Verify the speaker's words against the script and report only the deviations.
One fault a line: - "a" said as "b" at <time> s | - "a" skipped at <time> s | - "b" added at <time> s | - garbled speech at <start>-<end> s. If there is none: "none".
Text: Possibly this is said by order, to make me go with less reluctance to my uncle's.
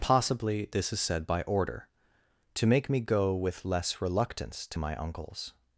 none